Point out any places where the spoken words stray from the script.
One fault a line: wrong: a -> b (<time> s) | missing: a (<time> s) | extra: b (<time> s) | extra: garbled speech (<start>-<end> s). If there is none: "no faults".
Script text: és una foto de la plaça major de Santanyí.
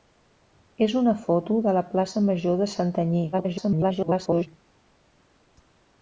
extra: garbled speech (3.3-4.5 s)